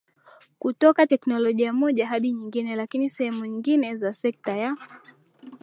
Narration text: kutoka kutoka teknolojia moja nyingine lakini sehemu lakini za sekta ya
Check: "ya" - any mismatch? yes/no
no